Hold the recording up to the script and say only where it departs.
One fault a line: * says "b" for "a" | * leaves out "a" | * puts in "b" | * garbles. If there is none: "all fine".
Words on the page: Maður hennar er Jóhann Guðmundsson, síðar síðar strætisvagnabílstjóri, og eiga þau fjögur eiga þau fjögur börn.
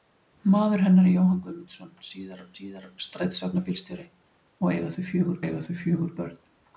all fine